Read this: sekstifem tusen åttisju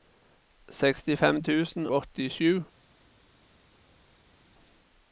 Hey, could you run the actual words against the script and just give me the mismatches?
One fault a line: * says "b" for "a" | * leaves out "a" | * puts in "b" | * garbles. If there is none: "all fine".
all fine